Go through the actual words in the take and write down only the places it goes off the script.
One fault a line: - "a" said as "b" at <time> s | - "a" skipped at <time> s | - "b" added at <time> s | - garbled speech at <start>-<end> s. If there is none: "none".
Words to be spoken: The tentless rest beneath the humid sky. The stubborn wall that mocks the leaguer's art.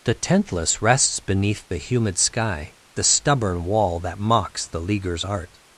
- "rest" said as "rests" at 0.8 s